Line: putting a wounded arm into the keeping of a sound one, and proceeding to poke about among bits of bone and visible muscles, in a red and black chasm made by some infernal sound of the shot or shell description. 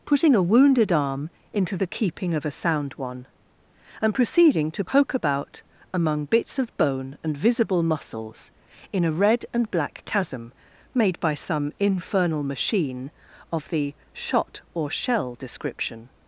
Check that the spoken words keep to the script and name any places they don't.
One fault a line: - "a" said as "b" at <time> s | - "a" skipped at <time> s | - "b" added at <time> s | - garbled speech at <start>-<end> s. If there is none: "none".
- "sound" said as "machine" at 12.4 s